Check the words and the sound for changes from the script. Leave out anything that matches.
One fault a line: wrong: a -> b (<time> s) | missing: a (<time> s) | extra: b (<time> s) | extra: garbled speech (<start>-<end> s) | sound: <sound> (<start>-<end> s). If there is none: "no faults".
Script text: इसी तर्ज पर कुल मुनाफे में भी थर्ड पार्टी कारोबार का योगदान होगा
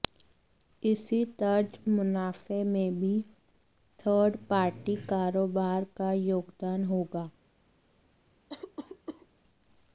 missing: पर कुल (1.8 s)
sound: cough (8.5-9.3 s)